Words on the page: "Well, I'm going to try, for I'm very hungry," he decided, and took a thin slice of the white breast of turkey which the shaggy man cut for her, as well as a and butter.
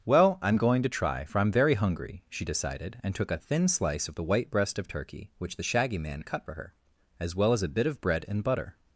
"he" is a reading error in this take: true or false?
true